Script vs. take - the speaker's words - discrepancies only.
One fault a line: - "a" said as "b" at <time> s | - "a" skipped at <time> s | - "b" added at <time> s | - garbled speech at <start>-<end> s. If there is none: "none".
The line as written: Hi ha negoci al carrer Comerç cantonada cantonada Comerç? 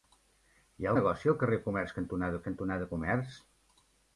none